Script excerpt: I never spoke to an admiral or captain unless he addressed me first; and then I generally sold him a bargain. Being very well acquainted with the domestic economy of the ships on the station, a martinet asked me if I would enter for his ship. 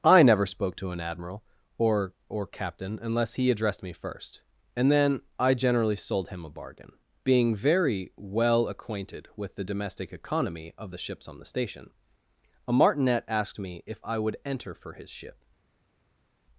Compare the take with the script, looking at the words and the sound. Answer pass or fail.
fail